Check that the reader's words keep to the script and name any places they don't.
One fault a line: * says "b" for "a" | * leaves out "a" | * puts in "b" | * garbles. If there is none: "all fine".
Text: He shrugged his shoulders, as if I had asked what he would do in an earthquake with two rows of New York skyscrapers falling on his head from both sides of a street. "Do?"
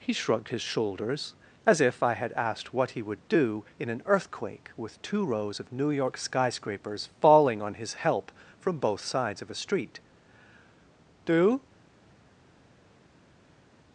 * says "help" for "head"